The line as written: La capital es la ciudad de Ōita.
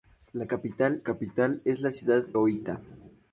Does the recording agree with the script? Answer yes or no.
no